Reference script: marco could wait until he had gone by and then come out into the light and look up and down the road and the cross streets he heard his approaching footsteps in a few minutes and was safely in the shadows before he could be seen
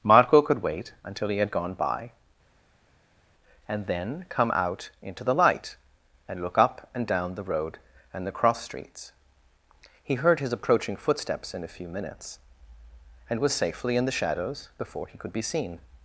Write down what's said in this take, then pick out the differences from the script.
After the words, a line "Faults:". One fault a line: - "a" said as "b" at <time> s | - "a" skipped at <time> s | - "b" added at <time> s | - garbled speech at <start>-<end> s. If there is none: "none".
marco could wait until he had gone by and then come out into the light and look up and down the road and the cross streets he heard his approaching footsteps in a few minutes and was safely in the shadows before he could be seen
Faults:
none